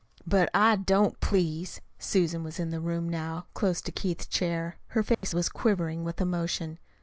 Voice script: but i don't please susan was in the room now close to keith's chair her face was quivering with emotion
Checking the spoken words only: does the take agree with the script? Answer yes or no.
yes